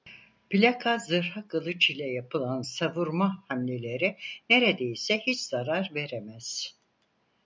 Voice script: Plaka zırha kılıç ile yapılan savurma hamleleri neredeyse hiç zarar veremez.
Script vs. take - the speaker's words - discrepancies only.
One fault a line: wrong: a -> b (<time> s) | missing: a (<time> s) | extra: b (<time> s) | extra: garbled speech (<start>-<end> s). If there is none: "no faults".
no faults